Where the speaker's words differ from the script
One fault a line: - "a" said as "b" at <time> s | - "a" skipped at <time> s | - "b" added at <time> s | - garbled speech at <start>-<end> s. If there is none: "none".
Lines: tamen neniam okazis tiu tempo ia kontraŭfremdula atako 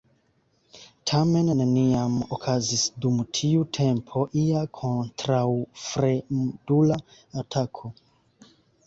- "dum" added at 3.0 s